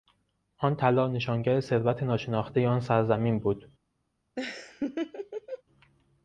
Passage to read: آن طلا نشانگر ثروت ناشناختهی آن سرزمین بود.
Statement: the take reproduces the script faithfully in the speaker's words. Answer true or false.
true